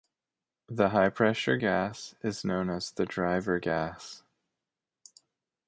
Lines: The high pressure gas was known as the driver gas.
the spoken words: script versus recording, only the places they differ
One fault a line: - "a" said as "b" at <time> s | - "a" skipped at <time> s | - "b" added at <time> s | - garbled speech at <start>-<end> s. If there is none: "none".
- "was" said as "is" at 2.2 s